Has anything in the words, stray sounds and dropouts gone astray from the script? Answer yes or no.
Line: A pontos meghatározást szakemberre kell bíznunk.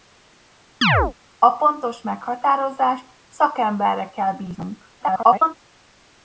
yes